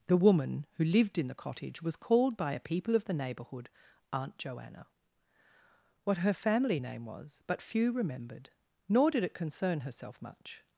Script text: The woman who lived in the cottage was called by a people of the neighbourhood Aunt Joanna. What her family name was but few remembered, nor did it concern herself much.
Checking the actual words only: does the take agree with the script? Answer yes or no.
yes